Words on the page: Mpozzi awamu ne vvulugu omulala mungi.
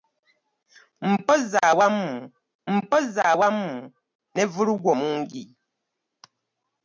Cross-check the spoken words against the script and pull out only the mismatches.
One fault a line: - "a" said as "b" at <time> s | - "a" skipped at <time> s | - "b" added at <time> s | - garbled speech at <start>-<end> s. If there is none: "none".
- "mpozzi awamu" added at 2.7 s
- "omulala" skipped at 4.9 s